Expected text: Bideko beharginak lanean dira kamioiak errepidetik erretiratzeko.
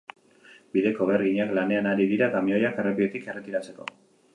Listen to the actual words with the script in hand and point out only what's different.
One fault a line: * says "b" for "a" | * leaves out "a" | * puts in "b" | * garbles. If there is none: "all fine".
* puts in "ari"